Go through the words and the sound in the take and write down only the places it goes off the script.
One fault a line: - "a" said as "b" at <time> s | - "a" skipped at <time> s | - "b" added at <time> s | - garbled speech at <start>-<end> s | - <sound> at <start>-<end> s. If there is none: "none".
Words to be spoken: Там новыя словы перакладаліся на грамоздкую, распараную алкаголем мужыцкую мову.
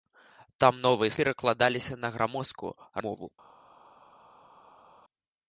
- "словы" skipped at 1.1 s
- "распараную алкаголем мужыцкую" skipped at 2.7 s